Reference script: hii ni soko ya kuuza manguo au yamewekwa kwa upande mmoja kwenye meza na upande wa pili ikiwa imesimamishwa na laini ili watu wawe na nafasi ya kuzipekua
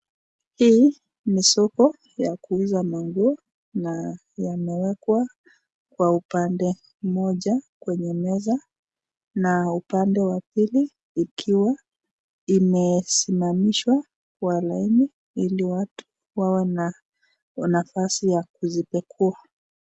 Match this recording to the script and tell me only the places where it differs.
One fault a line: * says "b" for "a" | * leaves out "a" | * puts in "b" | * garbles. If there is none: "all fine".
* says "na" for "au"
* says "kwa" for "na"